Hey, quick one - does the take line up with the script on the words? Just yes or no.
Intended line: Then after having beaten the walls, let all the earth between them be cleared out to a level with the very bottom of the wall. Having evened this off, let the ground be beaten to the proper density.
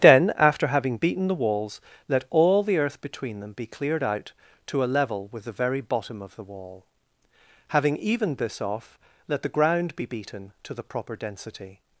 yes